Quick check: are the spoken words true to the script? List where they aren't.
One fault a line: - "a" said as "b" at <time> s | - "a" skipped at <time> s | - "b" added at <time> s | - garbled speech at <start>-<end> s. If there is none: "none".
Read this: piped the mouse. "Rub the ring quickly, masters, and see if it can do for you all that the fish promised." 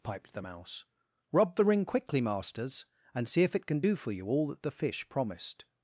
none